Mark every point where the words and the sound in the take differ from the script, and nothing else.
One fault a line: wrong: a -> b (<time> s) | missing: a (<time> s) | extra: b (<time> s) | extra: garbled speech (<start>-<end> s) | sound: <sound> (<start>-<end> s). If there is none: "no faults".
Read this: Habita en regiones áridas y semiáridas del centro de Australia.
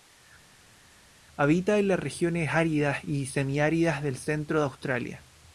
extra: las (1.9 s)